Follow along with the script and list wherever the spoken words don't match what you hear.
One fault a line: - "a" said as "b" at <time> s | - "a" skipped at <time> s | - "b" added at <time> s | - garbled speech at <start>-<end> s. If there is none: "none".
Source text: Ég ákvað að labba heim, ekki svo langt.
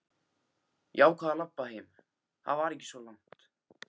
- "það var" added at 2.5 s